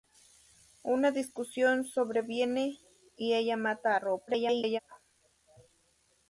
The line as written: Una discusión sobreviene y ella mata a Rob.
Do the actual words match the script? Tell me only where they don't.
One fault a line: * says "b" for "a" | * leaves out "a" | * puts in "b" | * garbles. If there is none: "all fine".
* garbles